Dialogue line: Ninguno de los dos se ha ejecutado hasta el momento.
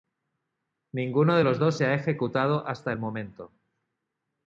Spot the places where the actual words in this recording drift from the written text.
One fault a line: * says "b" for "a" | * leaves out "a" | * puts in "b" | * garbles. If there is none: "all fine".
all fine